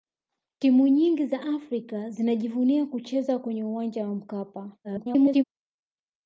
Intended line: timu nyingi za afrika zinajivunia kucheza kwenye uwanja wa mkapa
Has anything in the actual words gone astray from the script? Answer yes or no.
yes